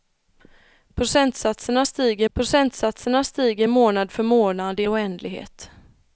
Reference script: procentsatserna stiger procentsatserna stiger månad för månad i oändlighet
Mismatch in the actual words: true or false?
false